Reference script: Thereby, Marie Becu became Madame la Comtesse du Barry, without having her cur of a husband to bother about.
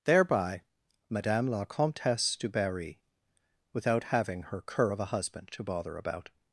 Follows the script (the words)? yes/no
no